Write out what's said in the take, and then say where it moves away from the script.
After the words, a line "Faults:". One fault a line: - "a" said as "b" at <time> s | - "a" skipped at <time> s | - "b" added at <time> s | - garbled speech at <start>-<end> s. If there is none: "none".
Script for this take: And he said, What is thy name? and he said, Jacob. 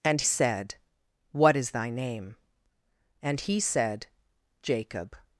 And said, What is thy name? and he said, Jacob.
Faults:
- "he" skipped at 0.2 s